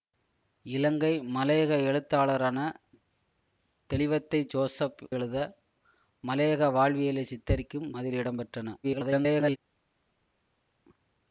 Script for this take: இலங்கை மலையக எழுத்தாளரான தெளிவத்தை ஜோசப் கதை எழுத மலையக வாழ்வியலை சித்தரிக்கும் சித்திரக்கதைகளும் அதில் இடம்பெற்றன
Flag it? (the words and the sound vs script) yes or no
yes